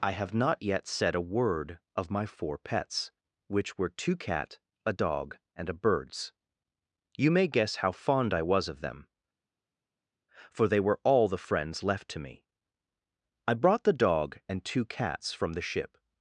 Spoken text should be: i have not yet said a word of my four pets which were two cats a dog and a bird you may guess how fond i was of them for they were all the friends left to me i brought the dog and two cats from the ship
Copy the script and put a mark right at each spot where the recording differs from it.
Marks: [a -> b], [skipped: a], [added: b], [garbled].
i have not yet said a word of my four pets which were two [cats -> cat] a dog and a [bird -> birds] you may guess how fond i was of them for they were all the friends left to me i brought the dog and two cats from the ship